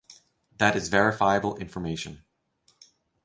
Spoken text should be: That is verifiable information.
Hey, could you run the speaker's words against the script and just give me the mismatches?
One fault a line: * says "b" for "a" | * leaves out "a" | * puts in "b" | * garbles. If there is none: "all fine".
all fine